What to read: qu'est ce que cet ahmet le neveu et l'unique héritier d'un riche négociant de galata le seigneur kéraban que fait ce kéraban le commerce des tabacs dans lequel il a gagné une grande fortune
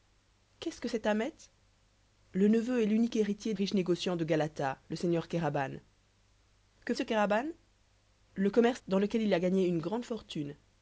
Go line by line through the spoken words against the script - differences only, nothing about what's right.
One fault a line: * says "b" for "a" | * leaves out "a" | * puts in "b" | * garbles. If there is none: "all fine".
* leaves out "d'un"
* leaves out "fait"
* leaves out "des tabacs"